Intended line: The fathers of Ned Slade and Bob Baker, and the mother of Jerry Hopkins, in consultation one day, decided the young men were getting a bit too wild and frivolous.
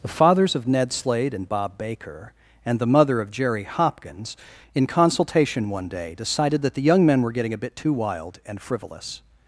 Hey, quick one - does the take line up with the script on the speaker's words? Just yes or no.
no